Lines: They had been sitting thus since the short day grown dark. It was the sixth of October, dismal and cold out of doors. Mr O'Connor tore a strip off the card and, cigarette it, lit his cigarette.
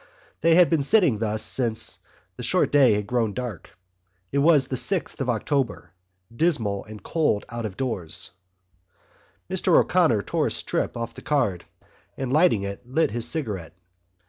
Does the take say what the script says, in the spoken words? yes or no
no